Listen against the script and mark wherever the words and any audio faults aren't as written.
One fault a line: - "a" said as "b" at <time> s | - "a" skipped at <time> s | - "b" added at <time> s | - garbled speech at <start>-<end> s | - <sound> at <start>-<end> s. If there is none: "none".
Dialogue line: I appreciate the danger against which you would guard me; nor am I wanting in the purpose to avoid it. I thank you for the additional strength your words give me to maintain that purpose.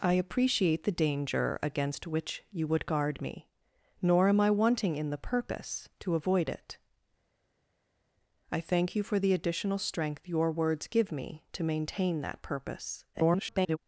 - garbled speech at 13.1-13.8 s